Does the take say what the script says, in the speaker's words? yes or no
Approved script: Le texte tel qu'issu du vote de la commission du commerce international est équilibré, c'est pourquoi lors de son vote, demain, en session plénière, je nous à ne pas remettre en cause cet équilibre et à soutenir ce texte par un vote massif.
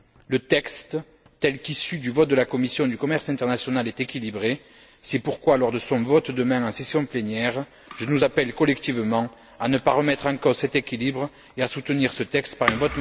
no